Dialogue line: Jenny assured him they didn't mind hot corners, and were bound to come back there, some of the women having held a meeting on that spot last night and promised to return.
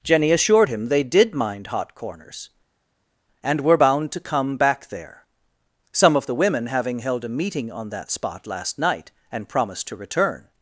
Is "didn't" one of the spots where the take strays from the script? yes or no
yes